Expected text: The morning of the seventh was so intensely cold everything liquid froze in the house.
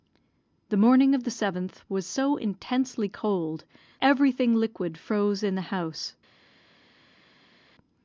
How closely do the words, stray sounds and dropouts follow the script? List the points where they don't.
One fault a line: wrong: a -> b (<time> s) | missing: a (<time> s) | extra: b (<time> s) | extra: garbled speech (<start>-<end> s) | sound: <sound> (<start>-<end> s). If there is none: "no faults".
no faults